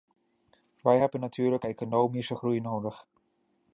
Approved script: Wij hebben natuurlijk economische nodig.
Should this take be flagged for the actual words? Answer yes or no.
yes